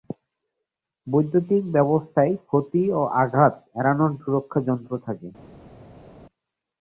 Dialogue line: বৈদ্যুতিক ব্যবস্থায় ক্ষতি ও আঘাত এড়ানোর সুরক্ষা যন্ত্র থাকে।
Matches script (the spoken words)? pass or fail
pass